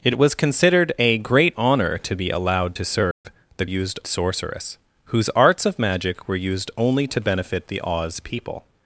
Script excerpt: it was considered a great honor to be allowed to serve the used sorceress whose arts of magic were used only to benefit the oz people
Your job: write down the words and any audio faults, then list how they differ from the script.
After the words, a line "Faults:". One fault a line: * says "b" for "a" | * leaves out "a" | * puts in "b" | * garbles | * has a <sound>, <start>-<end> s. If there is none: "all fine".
it was considered a great honor to be allowed to serve the used sorceress whose arts of magic were used only to benefit the oz people
Faults:
* has a dropout, 3.1-3.2 s